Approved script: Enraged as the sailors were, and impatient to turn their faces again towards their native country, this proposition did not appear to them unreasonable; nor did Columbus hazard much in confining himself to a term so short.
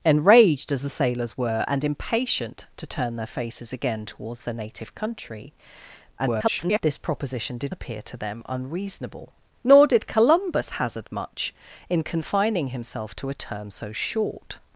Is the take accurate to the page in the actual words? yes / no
no